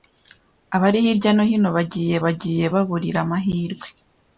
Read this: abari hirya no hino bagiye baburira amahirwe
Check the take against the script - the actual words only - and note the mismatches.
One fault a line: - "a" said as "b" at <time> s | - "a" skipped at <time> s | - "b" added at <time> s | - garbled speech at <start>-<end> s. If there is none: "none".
- "bagiye" added at 2.2 s